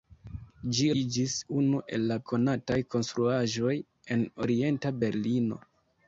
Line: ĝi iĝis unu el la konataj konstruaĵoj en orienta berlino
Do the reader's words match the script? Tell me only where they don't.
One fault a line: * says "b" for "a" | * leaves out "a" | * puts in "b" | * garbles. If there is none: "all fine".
all fine